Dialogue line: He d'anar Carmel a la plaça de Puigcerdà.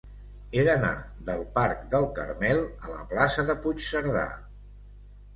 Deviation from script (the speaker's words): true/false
true